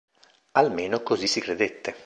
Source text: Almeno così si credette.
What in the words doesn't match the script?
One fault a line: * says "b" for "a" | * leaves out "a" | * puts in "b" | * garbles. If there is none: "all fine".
all fine